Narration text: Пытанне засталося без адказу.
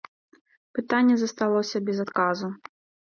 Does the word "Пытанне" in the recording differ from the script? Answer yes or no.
no